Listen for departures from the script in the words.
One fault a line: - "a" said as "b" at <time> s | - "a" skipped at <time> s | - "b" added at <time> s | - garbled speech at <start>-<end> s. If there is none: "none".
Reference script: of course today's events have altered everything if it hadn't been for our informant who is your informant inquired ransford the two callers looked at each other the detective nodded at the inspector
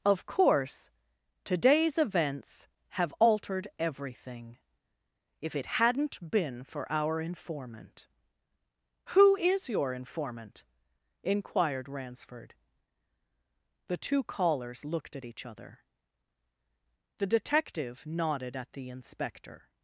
none